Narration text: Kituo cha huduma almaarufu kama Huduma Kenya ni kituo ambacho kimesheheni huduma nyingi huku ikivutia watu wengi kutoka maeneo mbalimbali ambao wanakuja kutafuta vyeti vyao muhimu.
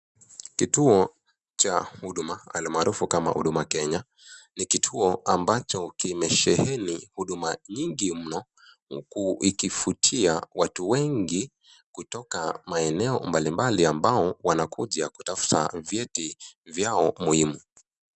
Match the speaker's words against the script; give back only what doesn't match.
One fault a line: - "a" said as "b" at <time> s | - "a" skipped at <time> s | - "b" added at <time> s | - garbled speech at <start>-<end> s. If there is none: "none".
- "mno" added at 8.2 s